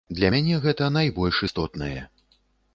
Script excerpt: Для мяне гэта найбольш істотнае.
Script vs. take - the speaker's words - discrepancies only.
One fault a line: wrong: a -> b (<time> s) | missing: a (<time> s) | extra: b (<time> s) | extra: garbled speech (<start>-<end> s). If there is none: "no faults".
no faults